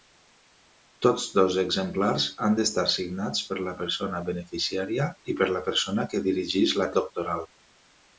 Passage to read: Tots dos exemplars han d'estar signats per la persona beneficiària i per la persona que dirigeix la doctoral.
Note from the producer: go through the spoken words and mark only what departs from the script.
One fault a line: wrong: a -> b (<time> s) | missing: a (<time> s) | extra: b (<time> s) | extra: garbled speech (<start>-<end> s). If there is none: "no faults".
no faults